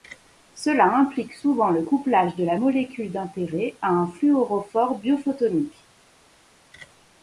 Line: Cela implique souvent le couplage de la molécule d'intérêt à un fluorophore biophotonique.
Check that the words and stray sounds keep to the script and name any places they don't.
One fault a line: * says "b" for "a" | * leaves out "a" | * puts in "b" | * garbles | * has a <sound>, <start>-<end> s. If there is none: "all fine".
all fine